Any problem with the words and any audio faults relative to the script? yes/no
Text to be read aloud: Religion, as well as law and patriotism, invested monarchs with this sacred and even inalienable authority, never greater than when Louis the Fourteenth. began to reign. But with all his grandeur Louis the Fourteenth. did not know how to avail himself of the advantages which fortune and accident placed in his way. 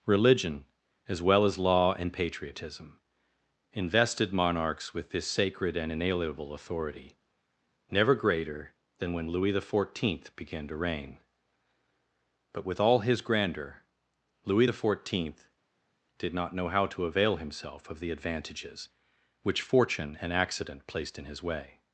yes